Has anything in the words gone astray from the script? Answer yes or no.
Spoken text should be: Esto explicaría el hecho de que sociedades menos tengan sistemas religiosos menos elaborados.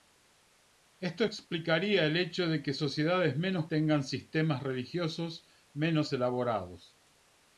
no